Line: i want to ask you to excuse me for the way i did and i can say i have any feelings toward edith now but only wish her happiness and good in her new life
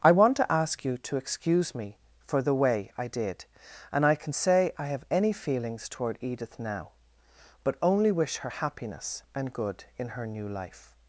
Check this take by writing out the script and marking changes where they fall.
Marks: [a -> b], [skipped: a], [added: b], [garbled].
i want to ask you to excuse me for the way i did and i can say i have any feelings toward edith now but only wish her happiness and good in her new life